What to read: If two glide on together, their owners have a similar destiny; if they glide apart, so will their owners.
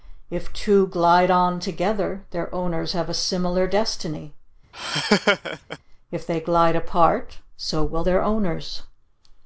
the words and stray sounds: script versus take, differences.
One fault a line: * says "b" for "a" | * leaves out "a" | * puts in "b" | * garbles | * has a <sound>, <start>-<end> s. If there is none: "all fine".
* has a laugh, 4.7-5.8 s